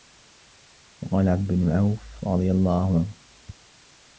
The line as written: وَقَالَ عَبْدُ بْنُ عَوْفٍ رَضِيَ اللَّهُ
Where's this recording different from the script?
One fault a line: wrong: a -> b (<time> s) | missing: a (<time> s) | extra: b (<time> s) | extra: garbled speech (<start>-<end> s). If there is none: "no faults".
no faults